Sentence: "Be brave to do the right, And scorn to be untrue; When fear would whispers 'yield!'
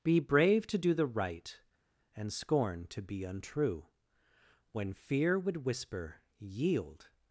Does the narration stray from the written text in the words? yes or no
yes